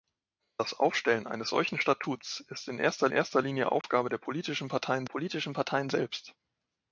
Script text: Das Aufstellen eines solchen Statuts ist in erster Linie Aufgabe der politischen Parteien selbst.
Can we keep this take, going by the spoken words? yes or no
no